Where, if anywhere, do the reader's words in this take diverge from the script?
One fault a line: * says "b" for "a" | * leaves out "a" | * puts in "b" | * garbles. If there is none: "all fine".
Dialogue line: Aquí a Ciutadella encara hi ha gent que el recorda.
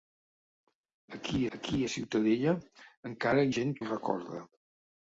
* puts in "aquí"
* leaves out "hi"
* leaves out "que"